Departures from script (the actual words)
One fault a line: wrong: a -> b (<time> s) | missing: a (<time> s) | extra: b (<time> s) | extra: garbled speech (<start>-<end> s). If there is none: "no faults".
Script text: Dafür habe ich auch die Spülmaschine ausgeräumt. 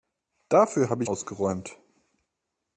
missing: auch die Spülmaschine (1.1 s)